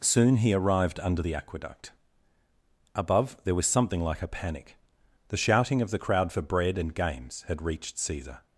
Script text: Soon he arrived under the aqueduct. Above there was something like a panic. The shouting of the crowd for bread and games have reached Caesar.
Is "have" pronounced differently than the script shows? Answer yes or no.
yes